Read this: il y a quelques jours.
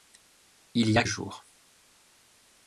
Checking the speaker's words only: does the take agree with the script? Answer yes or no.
no